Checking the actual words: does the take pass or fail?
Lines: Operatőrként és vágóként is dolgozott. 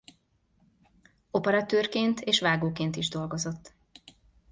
pass